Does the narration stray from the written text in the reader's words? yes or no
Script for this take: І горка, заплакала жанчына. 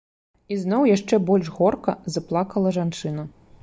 yes